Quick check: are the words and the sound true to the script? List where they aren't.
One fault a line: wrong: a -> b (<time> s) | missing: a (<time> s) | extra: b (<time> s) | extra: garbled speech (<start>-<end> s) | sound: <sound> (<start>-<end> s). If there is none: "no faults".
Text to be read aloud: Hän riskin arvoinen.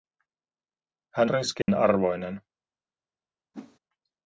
sound: dropout (1.6-1.7 s)
sound: whoosh (3.5-3.8 s)